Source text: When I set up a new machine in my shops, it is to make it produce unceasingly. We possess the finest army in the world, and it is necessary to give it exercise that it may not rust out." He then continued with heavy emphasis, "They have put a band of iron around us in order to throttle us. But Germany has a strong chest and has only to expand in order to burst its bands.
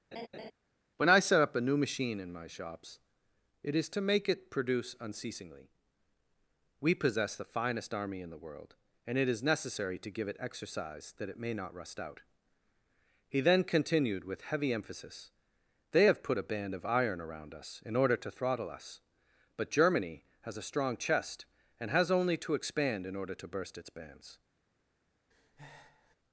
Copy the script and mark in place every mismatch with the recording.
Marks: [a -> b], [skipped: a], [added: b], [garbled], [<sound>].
[laugh] When I set up a new machine in my shops, it is to make it produce unceasingly. We possess the finest army in the world, and it is necessary to give it exercise that it may not rust out." He then continued with heavy emphasis, "They have put a band of iron around us in order to throttle us. But Germany has a strong chest and has only to expand in order to burst its bands. [breath]